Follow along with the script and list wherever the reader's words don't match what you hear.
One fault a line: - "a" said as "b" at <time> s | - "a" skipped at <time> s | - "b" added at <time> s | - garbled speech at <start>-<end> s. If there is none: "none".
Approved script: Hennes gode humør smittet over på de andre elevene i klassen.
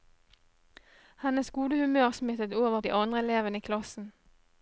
- "på" skipped at 2.8 s